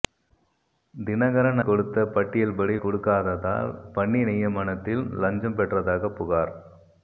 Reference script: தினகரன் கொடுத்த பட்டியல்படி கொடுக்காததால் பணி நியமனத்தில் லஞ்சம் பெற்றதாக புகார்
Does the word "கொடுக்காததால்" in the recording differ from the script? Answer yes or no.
no